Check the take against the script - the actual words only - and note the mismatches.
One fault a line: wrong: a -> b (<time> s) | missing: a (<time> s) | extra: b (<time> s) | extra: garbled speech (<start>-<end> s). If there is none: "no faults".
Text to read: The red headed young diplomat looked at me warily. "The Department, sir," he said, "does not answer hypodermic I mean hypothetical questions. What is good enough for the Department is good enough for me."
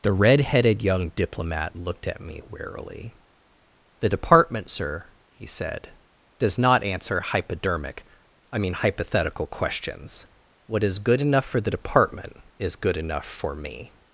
no faults